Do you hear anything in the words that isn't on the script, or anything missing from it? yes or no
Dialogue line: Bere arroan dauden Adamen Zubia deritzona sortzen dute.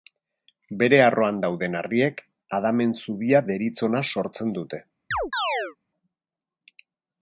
yes